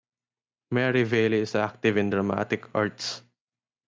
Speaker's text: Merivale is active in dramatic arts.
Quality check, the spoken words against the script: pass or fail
pass